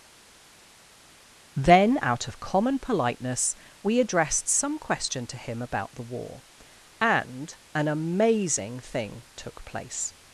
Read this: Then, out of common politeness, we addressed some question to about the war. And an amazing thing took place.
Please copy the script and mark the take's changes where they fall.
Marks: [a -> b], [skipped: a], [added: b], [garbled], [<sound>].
Then, out of common politeness, we addressed some question to [added: him] about the war. And an amazing thing took place.